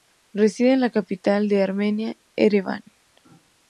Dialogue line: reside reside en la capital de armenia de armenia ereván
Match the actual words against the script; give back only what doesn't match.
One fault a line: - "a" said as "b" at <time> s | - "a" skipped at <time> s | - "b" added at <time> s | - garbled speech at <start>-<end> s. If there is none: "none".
- "reside" skipped at 0.7 s
- "de armenia" skipped at 2.2 s